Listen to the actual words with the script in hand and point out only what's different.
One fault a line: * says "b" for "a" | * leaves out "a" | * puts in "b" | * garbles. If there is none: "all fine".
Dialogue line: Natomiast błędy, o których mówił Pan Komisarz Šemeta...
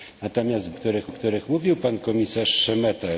* says "których" for "błędy"